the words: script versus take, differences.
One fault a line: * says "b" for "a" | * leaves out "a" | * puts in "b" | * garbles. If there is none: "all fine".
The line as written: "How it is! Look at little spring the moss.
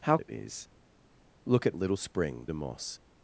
all fine